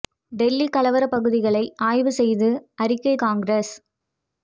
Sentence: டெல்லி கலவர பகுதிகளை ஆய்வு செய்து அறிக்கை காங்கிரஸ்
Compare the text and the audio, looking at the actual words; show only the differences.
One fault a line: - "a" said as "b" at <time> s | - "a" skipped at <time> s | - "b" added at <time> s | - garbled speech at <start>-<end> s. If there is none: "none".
none